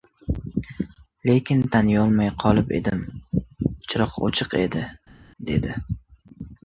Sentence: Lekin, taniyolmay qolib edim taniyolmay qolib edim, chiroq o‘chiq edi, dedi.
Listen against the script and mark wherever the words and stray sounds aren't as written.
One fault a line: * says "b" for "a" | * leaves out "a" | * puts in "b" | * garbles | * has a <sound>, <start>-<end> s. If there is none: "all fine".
* leaves out "taniyolmay qolib edim"